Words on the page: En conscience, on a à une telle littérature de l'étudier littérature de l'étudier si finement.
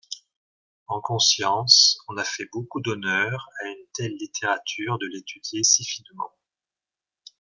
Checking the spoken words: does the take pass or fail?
fail